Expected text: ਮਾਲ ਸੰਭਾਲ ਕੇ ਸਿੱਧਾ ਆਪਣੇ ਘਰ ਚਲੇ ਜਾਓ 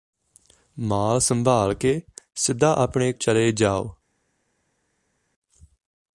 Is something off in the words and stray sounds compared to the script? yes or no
yes